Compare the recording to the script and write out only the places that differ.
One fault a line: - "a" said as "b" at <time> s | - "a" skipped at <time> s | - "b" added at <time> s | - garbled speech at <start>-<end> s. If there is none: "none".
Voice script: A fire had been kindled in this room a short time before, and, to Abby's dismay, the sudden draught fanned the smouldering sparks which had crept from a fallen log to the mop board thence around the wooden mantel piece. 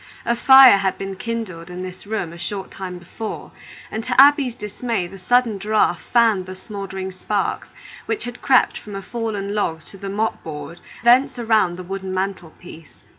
none